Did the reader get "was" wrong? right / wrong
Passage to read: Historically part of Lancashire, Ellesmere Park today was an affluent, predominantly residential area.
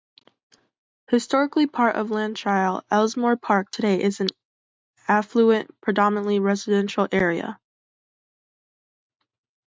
wrong